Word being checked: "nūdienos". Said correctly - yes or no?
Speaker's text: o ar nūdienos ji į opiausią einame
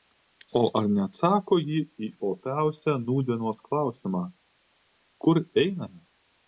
no